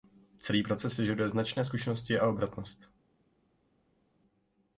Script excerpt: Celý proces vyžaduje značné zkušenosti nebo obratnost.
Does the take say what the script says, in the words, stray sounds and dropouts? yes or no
no